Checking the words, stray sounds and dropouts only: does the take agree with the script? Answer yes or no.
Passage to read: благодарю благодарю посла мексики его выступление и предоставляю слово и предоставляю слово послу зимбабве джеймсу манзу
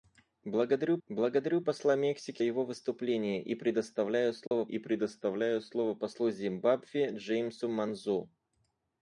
no